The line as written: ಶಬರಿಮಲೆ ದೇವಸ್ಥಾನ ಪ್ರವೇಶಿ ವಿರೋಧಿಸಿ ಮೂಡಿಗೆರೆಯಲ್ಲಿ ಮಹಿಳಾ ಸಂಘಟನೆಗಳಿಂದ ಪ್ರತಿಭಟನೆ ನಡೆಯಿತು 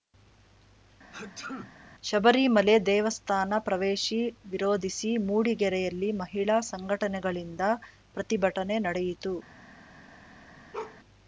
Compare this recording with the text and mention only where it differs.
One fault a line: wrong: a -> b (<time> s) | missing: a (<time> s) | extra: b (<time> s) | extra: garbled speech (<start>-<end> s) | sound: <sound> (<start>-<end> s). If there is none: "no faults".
sound: sneeze (1.1-1.7 s)
sound: bark (10.7-11.0 s)